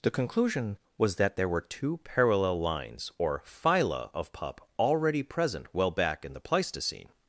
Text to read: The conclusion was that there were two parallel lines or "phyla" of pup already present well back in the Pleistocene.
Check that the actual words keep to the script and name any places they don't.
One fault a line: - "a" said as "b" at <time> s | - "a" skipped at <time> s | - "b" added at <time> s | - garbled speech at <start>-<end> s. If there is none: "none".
none